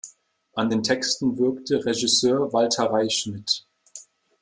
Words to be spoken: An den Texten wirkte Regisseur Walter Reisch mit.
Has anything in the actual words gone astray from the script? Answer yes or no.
no